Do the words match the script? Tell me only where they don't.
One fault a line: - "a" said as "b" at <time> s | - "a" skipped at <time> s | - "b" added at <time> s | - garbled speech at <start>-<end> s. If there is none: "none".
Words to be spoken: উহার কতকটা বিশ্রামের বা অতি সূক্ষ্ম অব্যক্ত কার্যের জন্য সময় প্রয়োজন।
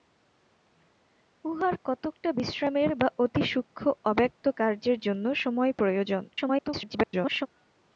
- garbled speech at 6.3-7.5 s